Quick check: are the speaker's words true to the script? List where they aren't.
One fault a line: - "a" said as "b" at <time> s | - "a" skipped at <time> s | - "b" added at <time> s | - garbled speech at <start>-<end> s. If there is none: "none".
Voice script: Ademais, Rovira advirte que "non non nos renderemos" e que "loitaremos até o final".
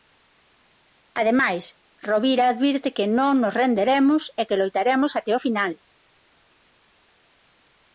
- "non" skipped at 3.3 s